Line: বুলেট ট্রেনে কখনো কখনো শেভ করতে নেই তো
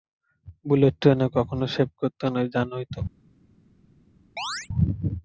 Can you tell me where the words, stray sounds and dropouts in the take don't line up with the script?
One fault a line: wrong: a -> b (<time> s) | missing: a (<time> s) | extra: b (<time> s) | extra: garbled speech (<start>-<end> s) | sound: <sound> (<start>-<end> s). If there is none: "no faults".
missing: কখনো (1.6 s)
extra: জানোই (2.5 s)
sound: chirp (4.4-4.7 s)